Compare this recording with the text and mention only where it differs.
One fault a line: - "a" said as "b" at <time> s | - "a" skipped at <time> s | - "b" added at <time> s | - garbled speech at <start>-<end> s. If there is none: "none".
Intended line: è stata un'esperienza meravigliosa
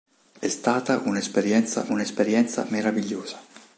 - "un'esperienza" added at 1.9 s